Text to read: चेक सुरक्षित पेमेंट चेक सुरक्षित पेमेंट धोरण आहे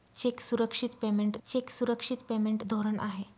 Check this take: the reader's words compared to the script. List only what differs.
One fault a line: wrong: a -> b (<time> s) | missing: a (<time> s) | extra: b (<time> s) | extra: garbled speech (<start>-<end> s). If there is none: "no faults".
no faults